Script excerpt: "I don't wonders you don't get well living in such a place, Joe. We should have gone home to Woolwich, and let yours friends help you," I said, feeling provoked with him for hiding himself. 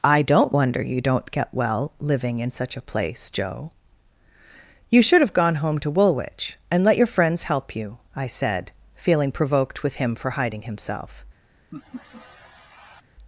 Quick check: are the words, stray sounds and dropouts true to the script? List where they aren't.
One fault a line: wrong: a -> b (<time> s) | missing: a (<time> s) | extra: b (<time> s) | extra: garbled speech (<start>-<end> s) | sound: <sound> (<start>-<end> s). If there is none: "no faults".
wrong: wonders -> wonder (0.5 s)
wrong: We -> You (4.9 s)
wrong: yours -> your (7.0 s)
sound: laugh (11.7-13.0 s)